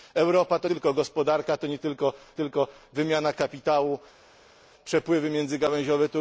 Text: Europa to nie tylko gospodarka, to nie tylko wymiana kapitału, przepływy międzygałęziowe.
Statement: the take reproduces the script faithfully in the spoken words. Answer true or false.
false